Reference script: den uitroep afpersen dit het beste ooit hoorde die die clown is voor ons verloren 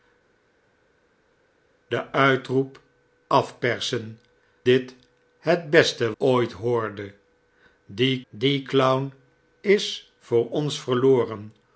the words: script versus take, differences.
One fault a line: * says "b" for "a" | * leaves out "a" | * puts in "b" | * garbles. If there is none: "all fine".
all fine